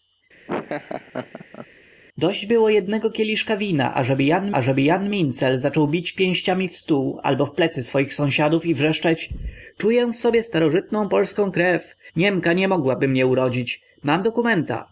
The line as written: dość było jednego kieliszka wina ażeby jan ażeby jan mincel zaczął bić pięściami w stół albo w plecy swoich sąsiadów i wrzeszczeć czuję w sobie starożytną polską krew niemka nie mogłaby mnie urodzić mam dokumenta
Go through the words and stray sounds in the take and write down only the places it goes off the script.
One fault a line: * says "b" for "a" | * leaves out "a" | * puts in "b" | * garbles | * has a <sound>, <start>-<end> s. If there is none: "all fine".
* has a laugh, 0.5-1.7 s